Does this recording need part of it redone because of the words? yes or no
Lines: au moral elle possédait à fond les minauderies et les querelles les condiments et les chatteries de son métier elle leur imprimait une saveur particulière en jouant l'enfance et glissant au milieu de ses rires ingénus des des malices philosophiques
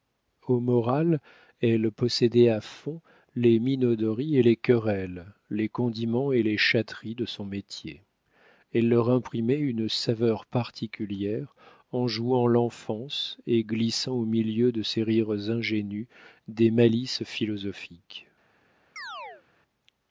yes